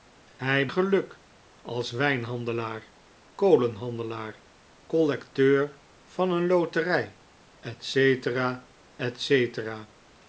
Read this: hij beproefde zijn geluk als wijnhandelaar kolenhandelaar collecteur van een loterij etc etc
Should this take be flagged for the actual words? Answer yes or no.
yes